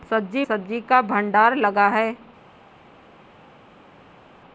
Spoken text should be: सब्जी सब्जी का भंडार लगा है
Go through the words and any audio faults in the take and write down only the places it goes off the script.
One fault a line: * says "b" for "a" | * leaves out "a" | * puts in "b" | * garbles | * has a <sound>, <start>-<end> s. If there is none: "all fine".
all fine